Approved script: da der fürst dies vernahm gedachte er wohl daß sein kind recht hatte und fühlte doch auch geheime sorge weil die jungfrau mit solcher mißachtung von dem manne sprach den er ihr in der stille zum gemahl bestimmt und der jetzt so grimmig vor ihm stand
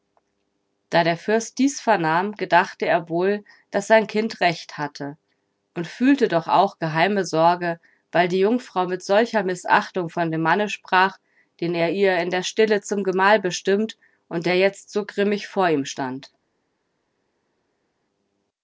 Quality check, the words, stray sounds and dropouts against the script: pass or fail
pass